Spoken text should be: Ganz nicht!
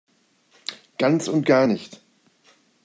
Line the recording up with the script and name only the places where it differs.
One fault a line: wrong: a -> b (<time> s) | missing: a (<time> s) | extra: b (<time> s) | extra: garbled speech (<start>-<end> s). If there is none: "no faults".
extra: und gar (1.3 s)